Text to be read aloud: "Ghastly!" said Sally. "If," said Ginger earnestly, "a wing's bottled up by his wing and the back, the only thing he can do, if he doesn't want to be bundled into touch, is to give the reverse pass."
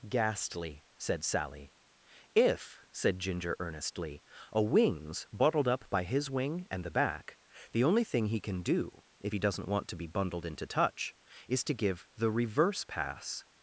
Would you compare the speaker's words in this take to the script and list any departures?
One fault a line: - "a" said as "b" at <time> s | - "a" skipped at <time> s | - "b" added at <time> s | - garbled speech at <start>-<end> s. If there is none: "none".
none